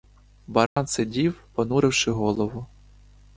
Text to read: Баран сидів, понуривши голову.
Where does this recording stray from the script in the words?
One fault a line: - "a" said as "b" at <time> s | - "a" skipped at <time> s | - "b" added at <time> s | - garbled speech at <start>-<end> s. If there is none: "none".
none